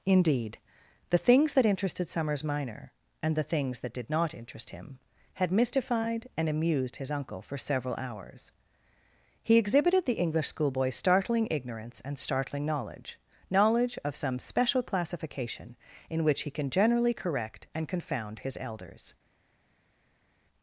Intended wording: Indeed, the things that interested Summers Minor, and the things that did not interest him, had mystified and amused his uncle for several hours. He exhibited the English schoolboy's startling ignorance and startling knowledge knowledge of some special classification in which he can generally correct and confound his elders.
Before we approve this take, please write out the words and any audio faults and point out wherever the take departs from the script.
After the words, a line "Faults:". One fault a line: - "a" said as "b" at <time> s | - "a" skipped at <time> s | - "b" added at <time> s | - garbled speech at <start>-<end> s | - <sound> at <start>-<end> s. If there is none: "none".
Indeed, the things that interested Summers Minor, and the things that did not interest him, had mystified and amused his uncle for several hours. He exhibited the English schoolboy's startling ignorance and startling knowledge knowledge of some special classification in which he can generally correct and confound his elders.
Faults:
none